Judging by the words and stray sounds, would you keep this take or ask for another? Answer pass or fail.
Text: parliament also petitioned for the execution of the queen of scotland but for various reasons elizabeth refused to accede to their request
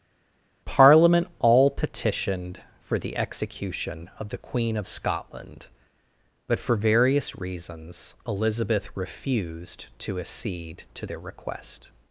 fail